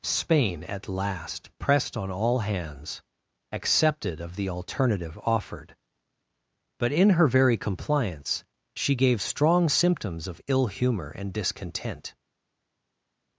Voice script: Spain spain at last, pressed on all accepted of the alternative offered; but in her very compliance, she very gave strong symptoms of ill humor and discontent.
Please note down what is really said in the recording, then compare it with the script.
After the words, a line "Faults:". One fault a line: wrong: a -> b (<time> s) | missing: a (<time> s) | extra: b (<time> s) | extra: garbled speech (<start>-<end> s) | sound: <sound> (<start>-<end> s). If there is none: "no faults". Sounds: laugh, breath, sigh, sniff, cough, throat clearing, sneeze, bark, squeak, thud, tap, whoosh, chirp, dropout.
Spain at last, pressed on all hands, accepted of the alternative offered; but in her very compliance, she gave strong symptoms of ill humor and discontent.
Faults:
missing: spain (0.6 s)
extra: hands (2.4 s)
missing: very (8.9 s)